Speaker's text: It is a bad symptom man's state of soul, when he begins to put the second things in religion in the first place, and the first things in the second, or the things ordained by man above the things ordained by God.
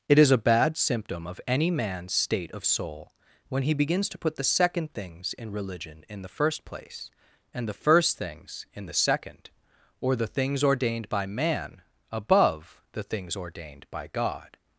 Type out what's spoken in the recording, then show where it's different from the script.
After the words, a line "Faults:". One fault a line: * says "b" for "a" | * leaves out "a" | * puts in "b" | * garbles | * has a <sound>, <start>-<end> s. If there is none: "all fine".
It is a bad symptom of any man's state of soul, when he begins to put the second things in religion in the first place, and the first things in the second, or the things ordained by man above the things ordained by God.
Faults:
* puts in "of any"